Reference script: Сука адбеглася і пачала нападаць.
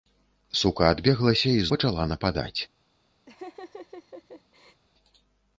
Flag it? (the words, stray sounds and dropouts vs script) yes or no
yes